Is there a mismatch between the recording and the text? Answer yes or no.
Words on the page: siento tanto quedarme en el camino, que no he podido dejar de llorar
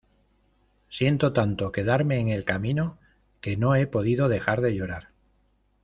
no